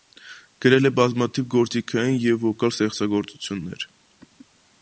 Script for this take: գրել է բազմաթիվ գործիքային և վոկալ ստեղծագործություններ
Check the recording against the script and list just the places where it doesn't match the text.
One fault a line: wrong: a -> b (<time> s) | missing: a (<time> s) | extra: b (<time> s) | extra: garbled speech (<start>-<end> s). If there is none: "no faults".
no faults